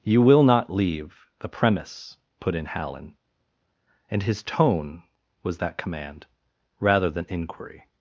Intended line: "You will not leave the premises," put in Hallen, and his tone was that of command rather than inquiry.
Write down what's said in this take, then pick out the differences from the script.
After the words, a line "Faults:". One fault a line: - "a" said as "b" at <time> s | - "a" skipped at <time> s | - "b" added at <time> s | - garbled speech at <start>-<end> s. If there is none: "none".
"You will not leave the premise," put in Hallen, and his tone was that command rather than inquiry.
Faults:
- "premises" said as "premise" at 1.5 s
- "of" skipped at 5.8 s